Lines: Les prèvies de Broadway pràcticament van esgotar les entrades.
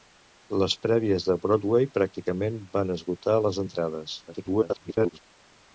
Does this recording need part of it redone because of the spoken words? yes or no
yes